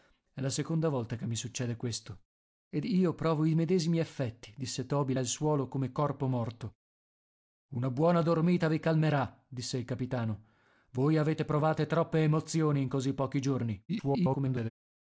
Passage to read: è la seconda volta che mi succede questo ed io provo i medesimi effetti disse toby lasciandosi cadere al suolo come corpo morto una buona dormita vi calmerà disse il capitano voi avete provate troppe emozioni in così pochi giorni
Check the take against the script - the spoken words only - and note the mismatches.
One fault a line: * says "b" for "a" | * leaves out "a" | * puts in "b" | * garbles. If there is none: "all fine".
* leaves out "lasciandosi cadere"
* garbles